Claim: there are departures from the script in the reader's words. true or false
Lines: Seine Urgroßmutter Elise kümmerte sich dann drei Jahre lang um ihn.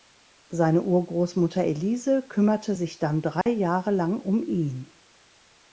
false